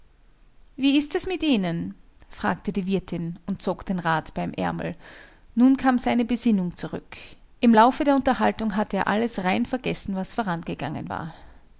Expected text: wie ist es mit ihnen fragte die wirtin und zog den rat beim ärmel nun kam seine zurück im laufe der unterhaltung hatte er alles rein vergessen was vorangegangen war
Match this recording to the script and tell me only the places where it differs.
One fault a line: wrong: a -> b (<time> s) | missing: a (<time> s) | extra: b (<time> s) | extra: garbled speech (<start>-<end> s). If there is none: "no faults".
extra: besinnung (6.2 s)